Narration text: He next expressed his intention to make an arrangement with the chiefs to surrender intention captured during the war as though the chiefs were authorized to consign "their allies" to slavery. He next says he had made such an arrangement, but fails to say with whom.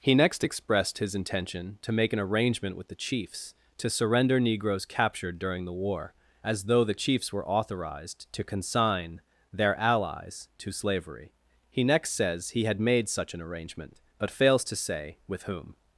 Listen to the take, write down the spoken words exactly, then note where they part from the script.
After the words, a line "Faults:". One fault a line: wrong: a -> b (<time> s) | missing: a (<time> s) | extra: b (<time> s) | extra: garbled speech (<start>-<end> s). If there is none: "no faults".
He next expressed his intention to make an arrangement with the chiefs to surrender negroes captured during the war as though the chiefs were authorized to consign "their allies" to slavery. He next says he had made such an arrangement, but fails to say with whom.
Faults:
wrong: intention -> negroes (4.4 s)